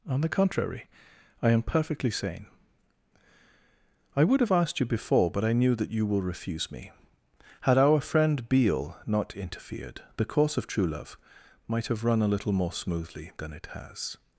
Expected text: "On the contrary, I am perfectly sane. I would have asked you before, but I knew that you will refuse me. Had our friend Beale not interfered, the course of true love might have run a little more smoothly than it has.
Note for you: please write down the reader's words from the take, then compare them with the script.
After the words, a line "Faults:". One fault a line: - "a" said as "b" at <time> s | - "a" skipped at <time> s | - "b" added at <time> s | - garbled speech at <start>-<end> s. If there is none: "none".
"On the contrary, I am perfectly sane. I would have asked you before, but I knew that you will refuse me. Had our friend Beale not interfered, the course of true love might have run a little more smoothly than it has.
Faults:
none